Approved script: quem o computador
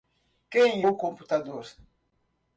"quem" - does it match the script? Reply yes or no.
yes